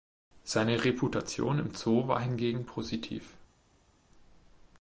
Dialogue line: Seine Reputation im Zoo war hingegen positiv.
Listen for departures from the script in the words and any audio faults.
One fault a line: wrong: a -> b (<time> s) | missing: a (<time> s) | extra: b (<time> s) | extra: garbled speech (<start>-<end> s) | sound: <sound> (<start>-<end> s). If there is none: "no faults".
no faults